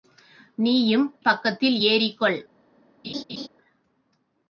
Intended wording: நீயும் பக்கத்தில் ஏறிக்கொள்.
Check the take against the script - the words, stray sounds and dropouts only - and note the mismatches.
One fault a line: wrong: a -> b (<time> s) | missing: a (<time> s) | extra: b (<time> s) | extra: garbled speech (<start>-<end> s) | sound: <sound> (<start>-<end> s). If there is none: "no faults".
sound: laugh (3.0-3.5 s)